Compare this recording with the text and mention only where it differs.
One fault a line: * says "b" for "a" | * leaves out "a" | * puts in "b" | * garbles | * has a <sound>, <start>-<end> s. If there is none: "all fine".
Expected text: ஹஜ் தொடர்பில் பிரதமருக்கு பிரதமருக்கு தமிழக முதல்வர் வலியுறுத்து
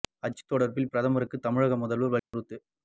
* leaves out "பிரதமருக்கு"
* has a dropout, 2.2-2.3 s